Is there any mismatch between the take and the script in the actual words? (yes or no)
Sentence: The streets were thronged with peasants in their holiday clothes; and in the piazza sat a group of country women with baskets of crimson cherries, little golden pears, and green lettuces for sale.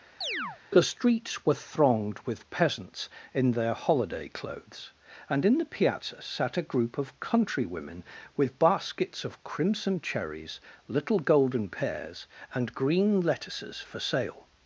no